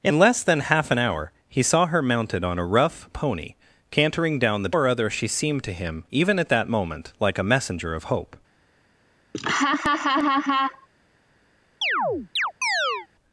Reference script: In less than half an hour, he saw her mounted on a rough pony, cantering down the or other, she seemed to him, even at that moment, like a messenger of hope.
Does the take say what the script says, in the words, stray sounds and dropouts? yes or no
no